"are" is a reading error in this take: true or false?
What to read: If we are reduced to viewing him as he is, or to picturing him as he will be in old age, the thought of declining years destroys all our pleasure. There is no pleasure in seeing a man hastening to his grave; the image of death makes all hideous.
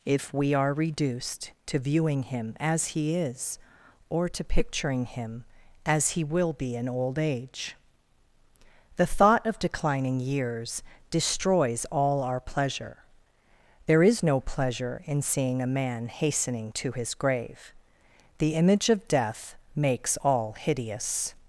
false